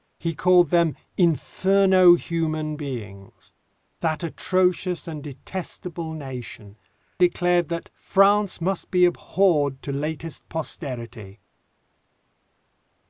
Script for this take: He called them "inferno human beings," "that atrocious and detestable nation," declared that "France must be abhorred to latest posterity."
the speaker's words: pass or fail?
pass